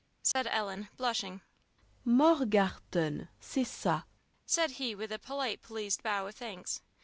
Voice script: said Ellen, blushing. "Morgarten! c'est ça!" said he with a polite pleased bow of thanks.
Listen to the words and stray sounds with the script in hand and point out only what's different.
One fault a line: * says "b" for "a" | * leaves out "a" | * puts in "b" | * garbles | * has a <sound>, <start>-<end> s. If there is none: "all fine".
* has a dropout, 0.3-0.4 s